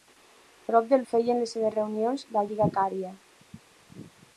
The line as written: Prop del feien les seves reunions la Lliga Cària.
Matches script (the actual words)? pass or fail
pass